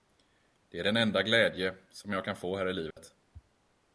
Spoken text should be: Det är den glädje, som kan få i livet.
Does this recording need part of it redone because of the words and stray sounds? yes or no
yes